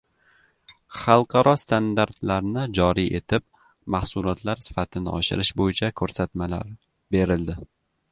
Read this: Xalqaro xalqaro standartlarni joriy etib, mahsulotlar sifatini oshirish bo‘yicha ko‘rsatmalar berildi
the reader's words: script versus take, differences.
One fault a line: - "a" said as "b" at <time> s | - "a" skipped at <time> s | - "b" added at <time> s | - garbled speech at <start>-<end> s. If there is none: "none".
- "xalqaro" skipped at 1.5 s